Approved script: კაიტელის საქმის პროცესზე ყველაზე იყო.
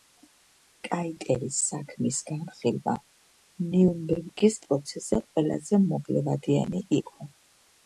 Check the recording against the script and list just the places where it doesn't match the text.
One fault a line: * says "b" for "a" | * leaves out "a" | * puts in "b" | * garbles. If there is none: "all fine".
* puts in "განხილვა ნიურნბერგის"
* puts in "მოკლევადიანი"